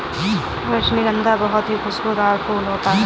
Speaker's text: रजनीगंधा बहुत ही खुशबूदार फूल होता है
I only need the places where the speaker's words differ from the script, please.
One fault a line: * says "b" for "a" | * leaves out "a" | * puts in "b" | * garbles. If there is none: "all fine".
all fine